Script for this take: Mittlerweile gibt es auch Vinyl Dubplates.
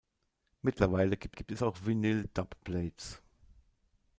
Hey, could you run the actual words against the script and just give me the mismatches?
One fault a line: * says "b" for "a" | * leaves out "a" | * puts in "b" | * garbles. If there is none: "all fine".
* puts in "gibt"